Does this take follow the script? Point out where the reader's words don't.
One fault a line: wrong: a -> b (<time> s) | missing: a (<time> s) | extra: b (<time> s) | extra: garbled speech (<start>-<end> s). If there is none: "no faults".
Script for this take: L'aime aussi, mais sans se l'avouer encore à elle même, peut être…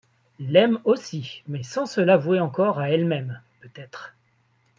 no faults